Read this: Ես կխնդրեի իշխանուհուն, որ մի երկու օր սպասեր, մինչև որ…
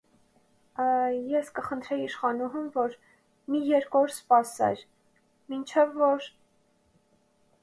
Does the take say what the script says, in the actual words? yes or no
yes